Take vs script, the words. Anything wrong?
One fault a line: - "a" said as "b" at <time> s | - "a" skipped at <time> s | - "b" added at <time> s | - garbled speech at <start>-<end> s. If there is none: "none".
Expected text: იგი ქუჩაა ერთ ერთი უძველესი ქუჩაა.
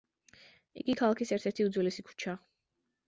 - "ქუჩაა" said as "ქალაქის" at 1.0 s